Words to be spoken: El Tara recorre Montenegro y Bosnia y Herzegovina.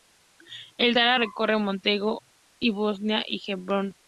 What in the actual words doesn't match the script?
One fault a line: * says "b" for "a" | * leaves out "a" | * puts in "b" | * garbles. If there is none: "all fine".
all fine